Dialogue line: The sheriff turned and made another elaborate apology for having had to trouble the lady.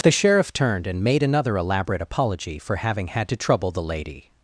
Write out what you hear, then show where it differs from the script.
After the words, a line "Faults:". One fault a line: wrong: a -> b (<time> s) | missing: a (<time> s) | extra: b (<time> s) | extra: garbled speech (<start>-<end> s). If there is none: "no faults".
The sheriff turned and made another elaborate apology for having had to trouble the lady.
Faults:
no faults